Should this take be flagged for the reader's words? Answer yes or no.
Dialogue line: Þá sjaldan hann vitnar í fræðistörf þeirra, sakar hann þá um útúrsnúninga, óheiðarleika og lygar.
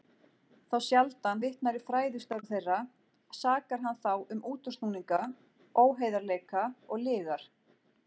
yes